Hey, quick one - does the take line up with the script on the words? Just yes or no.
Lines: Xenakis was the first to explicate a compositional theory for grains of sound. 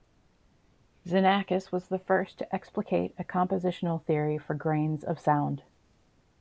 yes